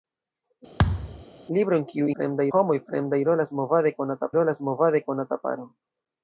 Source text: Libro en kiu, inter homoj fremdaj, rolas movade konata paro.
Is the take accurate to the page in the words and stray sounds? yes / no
no